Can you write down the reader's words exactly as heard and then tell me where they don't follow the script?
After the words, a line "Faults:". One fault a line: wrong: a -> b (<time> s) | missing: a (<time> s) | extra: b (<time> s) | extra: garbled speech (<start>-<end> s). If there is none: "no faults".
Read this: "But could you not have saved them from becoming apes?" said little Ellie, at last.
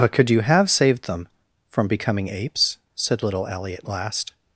"But could you have saved them from becoming apes?" said little Ellie, at last.
Faults:
missing: not (0.4 s)